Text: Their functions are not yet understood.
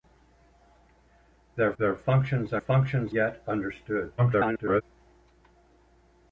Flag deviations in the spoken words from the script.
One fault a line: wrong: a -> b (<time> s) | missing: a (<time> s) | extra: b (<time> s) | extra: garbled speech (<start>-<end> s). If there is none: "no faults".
extra: their (1.8 s)
wrong: not -> functions (2.6 s)
extra: garbled speech (4.2-4.8 s)